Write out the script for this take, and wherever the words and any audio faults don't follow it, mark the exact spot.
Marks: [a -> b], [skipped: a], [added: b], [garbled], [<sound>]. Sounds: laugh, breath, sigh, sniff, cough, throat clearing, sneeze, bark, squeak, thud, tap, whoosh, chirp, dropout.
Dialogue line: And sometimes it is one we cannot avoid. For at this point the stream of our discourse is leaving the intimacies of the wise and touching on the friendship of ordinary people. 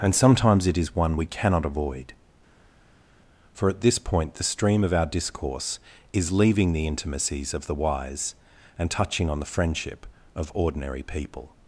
And sometimes it is one we cannot avoid. For at this point the stream of our discourse is leaving the intimacies of the wise and touching on the friendship of ordinary people.